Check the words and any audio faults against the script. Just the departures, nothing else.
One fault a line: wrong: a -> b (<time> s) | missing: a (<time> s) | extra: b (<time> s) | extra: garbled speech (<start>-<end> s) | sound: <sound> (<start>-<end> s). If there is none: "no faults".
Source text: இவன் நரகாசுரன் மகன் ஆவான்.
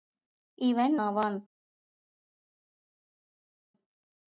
missing: நரகாசுரன் மகன் (0.9 s)